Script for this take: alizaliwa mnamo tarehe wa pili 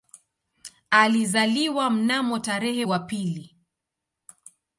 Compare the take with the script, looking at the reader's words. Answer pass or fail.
pass